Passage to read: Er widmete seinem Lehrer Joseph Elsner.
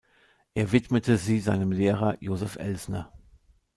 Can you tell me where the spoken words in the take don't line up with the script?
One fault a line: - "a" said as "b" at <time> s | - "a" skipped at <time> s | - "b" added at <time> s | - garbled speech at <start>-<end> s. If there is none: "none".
- "sie" added at 1.2 s